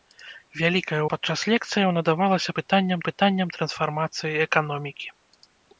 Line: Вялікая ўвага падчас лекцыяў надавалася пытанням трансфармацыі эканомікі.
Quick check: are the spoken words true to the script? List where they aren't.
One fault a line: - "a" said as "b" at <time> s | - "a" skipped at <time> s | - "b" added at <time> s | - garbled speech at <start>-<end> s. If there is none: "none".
- "ўвага" skipped at 1.0 s
- "пытанням" added at 3.1 s